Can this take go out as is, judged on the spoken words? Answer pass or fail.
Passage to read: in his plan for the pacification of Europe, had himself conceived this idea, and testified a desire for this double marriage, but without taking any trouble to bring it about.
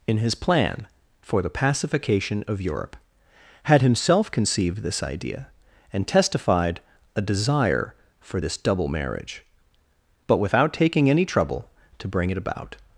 pass